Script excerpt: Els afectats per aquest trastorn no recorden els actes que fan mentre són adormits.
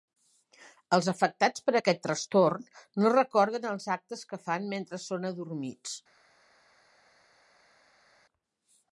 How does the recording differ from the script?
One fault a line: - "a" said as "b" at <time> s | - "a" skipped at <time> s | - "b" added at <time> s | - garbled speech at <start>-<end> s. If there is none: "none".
none